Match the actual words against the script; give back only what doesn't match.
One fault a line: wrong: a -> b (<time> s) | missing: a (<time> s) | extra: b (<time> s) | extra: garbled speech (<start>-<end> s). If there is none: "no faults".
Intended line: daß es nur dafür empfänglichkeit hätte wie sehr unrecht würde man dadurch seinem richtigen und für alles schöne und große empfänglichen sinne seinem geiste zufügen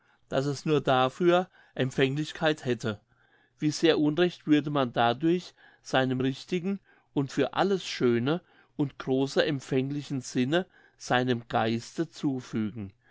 no faults